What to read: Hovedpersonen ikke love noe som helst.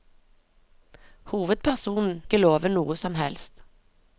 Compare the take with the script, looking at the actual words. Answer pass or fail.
pass